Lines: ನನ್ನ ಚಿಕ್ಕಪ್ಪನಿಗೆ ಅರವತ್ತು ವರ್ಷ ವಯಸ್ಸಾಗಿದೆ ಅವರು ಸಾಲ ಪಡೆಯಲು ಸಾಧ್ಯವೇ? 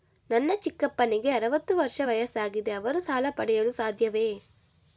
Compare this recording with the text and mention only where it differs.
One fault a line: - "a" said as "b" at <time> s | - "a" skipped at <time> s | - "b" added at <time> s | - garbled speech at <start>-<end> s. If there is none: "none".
none